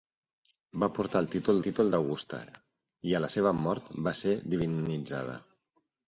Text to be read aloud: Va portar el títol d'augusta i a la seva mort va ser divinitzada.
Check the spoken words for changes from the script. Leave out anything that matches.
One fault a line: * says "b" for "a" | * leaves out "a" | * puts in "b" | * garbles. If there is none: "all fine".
* puts in "títol"